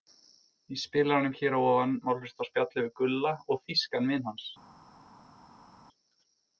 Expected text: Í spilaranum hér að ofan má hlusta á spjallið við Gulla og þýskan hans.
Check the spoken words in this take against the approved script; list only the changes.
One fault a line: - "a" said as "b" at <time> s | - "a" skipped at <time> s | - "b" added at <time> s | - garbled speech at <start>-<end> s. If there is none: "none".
- "vin" added at 4.2 s